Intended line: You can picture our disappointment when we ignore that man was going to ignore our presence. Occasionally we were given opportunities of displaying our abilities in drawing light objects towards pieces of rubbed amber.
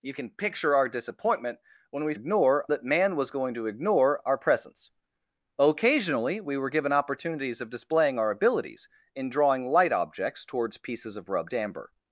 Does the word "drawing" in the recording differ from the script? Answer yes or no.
no